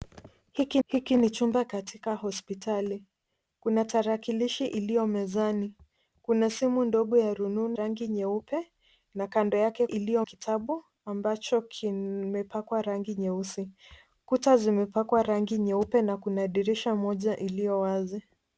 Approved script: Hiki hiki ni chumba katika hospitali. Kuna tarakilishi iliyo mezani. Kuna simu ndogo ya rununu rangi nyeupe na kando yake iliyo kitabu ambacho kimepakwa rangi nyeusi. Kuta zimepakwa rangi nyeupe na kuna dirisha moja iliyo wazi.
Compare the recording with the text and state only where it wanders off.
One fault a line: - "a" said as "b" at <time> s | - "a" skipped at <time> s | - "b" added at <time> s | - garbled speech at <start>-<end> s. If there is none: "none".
none